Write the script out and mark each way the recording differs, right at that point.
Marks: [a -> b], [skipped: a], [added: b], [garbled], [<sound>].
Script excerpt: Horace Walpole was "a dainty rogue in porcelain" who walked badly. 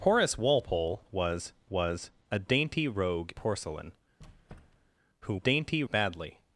Horace Walpole was [added: was] "a dainty rogue [skipped: in] porcelain" [squeak] who [walked -> dainty] badly.